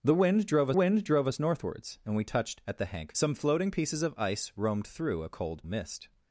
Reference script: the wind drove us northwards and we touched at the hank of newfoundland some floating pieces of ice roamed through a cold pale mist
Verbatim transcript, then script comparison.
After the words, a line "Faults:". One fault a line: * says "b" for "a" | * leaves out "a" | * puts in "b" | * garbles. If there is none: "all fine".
the wind drove wind drove us northwards and we touched at the hank some floating pieces of ice roamed through a cold mist
Faults:
* puts in "wind drove"
* leaves out "of newfoundland"
* leaves out "pale"